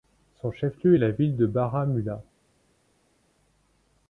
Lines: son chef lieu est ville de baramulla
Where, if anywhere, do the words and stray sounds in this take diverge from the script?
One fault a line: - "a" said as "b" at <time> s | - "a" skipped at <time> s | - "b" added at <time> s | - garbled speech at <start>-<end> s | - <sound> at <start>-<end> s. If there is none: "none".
- "la" added at 1.0 s